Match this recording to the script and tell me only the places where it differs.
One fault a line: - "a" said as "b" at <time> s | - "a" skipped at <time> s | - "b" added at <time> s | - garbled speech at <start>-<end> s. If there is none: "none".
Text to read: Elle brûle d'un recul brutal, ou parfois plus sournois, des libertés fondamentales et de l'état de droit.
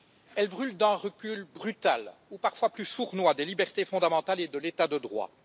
none